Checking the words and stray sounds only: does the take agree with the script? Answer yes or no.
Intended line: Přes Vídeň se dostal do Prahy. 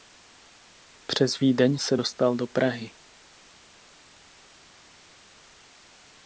yes